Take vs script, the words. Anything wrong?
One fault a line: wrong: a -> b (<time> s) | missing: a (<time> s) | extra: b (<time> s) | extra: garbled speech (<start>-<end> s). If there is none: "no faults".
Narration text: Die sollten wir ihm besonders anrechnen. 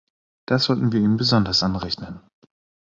wrong: Die -> Das (0.5 s)